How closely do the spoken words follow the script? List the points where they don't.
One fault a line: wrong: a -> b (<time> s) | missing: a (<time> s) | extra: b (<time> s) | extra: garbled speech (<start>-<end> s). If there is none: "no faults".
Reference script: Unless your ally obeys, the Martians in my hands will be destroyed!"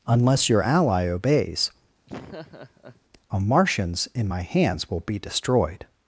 wrong: the -> a (3.3 s)